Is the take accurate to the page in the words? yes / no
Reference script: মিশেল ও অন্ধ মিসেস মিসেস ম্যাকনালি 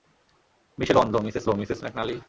yes